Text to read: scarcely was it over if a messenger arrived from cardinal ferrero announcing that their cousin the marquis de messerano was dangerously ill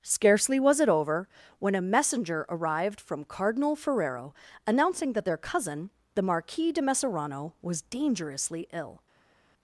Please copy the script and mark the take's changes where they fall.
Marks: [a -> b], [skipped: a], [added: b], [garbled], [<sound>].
scarcely was it over [if -> when] a messenger arrived from cardinal ferrero announcing that their cousin the marquis de messerano was dangerously ill